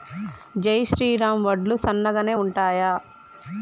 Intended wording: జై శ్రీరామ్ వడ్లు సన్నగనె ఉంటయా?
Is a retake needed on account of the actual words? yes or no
no